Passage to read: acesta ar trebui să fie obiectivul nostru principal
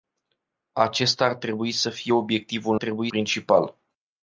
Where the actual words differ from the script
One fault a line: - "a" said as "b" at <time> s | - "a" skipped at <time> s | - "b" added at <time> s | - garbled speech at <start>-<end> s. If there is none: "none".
- "nostru" said as "trebui" at 2.7 s